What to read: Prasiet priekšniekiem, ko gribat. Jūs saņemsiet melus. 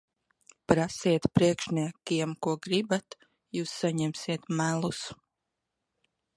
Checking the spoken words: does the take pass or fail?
pass